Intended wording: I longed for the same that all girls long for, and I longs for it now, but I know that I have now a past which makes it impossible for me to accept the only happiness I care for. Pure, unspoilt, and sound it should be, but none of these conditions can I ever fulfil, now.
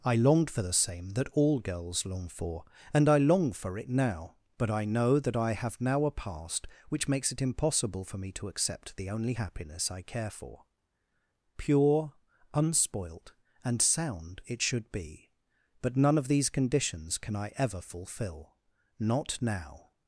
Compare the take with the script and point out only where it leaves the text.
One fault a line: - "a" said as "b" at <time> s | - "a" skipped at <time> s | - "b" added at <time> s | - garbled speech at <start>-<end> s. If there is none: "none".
- "longs" said as "long" at 3.2 s
- "not" added at 19.0 s